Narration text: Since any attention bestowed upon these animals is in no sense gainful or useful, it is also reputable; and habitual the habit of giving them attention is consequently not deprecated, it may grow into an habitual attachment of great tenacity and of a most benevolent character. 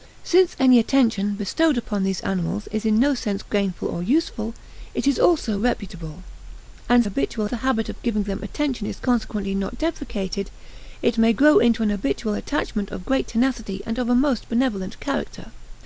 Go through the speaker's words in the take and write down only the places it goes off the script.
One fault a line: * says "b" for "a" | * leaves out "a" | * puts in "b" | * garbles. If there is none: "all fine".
all fine